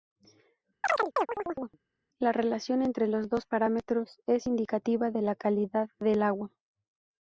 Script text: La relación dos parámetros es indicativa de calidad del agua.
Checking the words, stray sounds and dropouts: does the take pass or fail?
fail